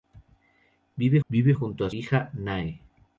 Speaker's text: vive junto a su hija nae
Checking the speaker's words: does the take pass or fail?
fail